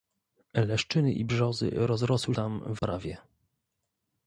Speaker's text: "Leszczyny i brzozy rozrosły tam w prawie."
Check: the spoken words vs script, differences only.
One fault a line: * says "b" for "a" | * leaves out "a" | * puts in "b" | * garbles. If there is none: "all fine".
all fine